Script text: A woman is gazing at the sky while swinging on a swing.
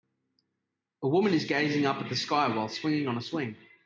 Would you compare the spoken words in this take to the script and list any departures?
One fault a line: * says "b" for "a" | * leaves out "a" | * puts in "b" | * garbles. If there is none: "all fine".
* puts in "up"